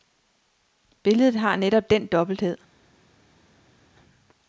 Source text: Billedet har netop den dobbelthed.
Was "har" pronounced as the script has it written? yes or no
yes